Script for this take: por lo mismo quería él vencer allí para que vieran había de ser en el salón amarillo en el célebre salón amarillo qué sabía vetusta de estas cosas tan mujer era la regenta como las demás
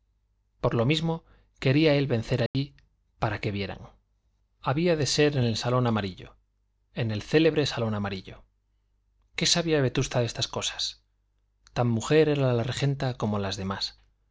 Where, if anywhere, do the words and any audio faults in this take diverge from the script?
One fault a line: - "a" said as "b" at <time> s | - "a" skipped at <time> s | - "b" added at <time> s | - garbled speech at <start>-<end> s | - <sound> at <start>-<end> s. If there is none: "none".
- dropout at 2.5-2.5 s